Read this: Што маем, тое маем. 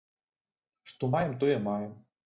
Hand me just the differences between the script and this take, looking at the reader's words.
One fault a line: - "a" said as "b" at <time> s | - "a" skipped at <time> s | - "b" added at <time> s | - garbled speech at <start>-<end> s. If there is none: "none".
none